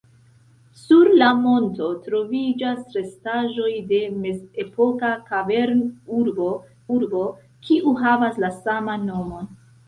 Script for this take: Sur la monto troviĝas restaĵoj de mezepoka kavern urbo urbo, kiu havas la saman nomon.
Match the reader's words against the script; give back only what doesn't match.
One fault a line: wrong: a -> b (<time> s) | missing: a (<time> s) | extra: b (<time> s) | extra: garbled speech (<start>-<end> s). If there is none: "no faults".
no faults